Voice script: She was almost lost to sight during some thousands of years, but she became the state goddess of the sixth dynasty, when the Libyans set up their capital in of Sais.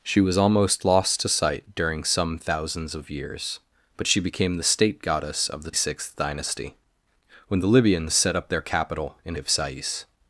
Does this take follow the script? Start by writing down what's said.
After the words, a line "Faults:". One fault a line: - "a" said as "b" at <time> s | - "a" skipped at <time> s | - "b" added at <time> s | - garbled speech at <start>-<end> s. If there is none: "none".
She was almost lost to sight during some thousands of years, but she became the state goddess of the sixth dynasty, when the Libyans set up their capital in of Sais.
Faults:
none